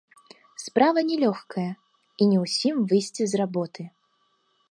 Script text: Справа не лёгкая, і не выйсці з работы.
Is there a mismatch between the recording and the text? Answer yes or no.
yes